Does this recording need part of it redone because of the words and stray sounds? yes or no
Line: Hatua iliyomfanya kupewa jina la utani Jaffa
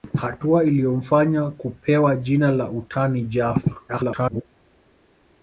yes